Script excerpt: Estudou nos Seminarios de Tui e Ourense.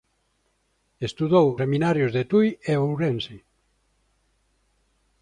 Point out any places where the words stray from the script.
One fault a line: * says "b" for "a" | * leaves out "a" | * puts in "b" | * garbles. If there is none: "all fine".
* leaves out "nos"